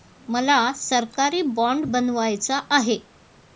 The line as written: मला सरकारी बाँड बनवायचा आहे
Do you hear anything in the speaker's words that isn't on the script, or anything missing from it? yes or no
no